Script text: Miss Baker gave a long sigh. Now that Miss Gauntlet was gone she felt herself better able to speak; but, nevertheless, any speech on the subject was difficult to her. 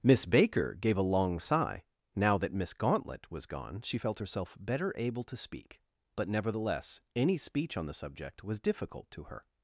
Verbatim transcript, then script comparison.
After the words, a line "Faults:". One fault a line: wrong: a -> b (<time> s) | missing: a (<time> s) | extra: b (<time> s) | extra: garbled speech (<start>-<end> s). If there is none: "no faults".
Miss Baker gave a long sigh. Now that Miss Gauntlet was gone she felt herself better able to speak; but, nevertheless, any speech on the subject was difficult to her.
Faults:
no faults